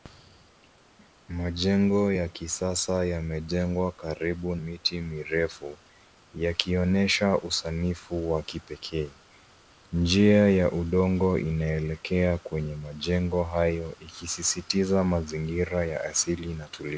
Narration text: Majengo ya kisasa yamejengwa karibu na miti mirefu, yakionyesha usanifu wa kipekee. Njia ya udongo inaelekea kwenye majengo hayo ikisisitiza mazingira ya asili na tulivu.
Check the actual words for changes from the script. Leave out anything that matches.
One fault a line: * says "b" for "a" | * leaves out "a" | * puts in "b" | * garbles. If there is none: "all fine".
* leaves out "na"